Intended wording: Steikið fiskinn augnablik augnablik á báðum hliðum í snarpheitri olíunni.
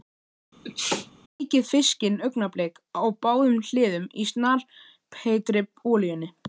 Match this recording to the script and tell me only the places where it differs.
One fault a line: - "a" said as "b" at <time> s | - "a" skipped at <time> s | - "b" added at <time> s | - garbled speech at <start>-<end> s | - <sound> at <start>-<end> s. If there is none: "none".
- sneeze at 0.6-1.1 s
- "augnablik" skipped at 2.8 s